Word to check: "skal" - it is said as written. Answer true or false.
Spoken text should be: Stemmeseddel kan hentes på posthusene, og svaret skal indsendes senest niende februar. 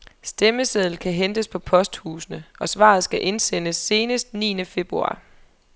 true